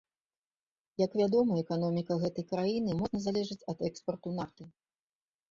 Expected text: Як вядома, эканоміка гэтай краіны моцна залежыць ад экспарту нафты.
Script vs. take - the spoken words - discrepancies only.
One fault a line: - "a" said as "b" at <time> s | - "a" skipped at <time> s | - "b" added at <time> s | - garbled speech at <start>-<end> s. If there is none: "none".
none